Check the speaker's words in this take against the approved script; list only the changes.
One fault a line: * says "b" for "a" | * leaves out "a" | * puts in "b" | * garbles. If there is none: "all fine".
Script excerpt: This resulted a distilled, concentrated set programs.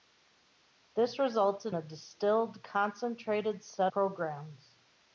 all fine